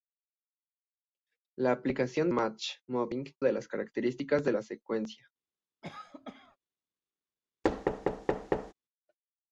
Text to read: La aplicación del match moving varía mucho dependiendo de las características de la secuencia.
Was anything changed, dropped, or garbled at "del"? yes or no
yes